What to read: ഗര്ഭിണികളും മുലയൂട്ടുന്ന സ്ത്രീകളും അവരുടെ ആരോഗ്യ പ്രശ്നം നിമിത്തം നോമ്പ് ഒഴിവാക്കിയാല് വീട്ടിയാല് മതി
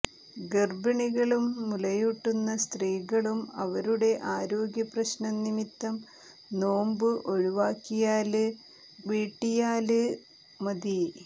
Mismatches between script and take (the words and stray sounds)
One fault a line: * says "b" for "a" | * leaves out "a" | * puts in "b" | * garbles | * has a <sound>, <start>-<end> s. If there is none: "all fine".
all fine